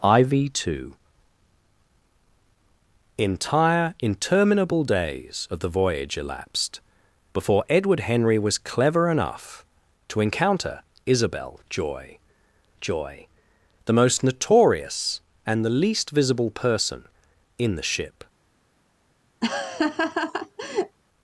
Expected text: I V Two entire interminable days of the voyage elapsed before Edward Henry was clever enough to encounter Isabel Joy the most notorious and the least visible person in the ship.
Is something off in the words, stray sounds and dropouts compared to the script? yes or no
yes